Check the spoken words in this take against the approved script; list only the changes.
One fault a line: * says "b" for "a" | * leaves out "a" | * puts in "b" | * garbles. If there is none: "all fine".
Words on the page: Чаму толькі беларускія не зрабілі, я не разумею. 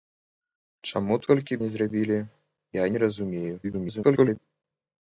* leaves out "беларускія"
* garbles